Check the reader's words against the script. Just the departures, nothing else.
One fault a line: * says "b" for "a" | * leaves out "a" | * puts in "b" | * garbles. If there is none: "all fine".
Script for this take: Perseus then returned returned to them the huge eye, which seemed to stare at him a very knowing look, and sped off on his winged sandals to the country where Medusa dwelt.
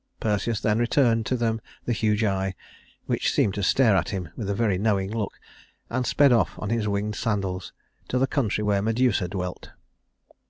* leaves out "returned"
* puts in "with"